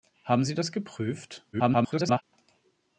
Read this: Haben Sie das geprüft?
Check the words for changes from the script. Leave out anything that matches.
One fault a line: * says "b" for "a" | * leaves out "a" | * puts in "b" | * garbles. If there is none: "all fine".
* garbles